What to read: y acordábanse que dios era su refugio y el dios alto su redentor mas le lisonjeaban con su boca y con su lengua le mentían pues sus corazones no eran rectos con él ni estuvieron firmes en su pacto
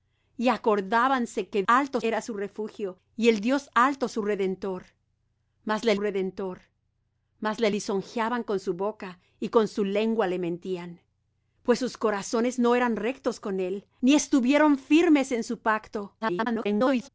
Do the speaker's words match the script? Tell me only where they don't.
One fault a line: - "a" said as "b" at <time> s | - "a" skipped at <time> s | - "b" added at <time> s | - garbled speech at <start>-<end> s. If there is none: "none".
- "dios" said as "alto" at 1.7 s
- "redentor mas le" added at 6.0 s
- garbled speech at 16.2-17.1 s